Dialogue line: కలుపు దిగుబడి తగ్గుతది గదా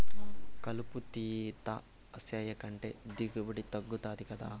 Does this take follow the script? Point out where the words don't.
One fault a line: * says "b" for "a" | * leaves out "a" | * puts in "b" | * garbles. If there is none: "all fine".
* puts in "తీత సేయకంటే"